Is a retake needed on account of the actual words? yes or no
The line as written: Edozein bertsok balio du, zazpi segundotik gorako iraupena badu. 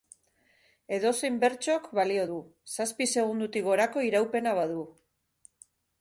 no